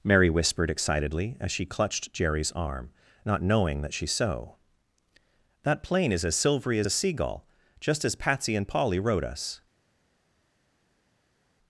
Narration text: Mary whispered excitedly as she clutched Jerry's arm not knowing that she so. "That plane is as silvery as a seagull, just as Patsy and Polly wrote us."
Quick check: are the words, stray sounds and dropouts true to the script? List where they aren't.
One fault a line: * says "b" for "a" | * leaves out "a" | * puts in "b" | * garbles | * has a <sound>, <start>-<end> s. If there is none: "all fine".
all fine